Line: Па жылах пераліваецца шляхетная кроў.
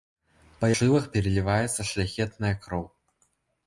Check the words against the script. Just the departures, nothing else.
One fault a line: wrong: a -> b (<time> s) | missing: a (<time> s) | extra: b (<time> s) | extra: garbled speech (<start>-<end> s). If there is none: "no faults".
no faults